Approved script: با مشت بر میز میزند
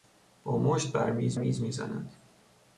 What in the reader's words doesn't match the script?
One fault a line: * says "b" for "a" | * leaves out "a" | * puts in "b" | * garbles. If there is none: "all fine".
* puts in "میز"